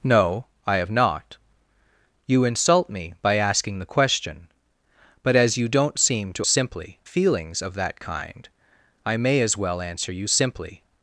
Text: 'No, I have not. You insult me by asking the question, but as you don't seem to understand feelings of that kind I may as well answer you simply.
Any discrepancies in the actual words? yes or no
yes